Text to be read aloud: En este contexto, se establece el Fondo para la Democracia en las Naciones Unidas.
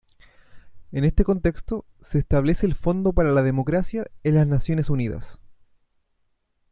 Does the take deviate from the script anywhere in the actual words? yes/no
no